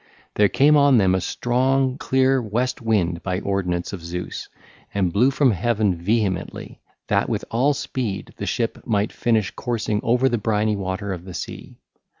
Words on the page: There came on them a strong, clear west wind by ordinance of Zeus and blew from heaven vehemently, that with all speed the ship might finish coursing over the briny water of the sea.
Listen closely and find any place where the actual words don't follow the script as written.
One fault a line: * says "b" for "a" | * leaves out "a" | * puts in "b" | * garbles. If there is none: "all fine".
all fine